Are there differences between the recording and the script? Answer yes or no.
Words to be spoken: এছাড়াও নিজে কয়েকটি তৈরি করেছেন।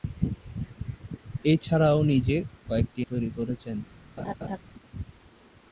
no